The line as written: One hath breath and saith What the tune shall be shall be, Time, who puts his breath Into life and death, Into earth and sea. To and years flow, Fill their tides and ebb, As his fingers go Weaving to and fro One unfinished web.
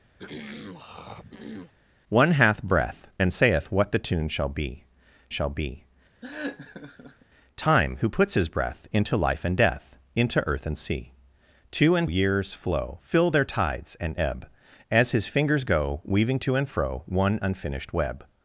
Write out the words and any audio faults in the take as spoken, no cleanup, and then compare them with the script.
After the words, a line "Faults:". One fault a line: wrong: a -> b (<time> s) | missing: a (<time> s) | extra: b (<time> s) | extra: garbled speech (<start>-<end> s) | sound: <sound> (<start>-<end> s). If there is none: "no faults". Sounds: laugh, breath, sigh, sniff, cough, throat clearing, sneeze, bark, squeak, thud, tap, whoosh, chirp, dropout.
One hath breath and saith What the tune shall be shall be, Time, who puts his breath Into life and death, Into earth and sea. To and years flow, Fill their tides and ebb, As his fingers go Weaving to and fro One unfinished web.
Faults:
sound: throat clearing (0.2-1.7 s)
sound: laugh (6.2-7.3 s)